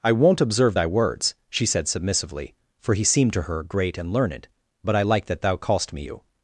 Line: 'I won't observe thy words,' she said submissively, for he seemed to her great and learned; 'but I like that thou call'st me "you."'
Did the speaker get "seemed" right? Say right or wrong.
right